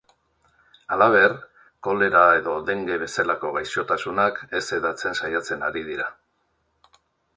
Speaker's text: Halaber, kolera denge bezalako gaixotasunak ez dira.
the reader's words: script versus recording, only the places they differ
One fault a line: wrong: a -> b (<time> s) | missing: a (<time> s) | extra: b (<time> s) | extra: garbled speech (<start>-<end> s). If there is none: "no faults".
extra: edo (2.4 s)
extra: hedatzen saiatzen ari (4.8 s)